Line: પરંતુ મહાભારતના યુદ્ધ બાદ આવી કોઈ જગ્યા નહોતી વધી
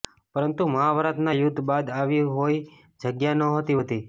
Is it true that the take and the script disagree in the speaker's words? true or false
false